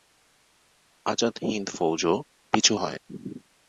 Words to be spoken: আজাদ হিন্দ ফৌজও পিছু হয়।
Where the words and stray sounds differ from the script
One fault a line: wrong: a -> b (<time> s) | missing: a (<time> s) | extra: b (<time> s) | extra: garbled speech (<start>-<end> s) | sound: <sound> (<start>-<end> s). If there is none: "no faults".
no faults